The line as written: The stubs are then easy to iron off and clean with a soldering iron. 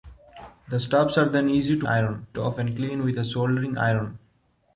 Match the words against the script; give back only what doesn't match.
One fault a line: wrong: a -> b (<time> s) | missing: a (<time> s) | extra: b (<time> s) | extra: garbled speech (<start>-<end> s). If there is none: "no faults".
no faults